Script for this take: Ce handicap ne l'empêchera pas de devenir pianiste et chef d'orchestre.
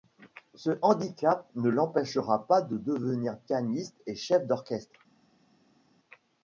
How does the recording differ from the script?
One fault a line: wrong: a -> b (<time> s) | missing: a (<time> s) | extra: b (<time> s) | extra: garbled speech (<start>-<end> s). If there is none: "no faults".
no faults